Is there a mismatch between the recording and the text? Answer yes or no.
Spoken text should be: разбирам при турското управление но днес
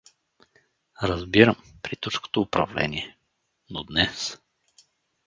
no